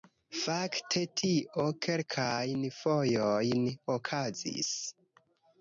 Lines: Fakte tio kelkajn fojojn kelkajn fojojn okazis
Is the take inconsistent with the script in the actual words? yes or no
yes